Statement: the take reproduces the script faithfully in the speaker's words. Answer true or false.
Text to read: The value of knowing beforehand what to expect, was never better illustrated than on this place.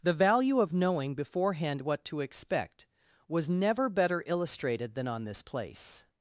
true